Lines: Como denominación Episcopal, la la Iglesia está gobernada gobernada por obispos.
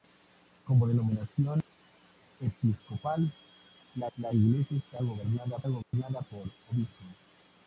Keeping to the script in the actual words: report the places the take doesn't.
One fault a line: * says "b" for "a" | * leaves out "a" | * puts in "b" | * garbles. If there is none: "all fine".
all fine